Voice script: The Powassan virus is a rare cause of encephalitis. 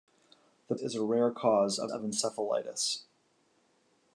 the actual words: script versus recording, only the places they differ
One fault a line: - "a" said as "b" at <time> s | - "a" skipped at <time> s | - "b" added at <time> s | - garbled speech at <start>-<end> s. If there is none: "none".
- "Powassan virus" skipped at 0.8 s
- "of" added at 1.9 s